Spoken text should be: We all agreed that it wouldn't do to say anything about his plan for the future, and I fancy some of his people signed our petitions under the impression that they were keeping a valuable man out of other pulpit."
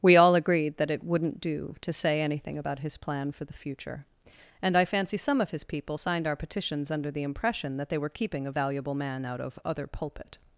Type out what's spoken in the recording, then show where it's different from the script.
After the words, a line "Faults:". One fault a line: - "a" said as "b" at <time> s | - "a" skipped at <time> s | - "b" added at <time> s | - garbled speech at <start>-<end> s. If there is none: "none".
We all agreed that it wouldn't do to say anything about his plan for the future, and I fancy some of his people signed our petitions under the impression that they were keeping a valuable man out of other pulpit."
Faults:
none